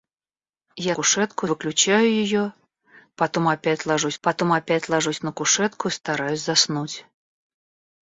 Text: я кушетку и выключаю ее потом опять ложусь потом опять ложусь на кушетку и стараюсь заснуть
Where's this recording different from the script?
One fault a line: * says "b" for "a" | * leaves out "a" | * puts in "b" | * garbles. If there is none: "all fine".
all fine